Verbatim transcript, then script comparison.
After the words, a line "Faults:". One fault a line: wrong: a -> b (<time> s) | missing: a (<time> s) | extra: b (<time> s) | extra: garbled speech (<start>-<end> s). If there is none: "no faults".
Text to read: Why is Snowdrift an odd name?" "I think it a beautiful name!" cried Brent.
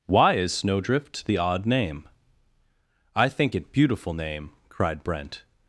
Why is Snowdrift the odd name?" "I think it beautiful name!" cried Brent.
Faults:
wrong: an -> the (1.2 s)
missing: a (3.7 s)